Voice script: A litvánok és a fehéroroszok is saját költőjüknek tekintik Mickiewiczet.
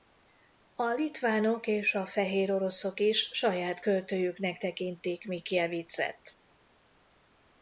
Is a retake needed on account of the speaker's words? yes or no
no